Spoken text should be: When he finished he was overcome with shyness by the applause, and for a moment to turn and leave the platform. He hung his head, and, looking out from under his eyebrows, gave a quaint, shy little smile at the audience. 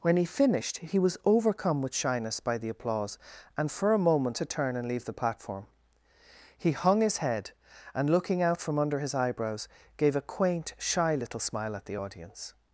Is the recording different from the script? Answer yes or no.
no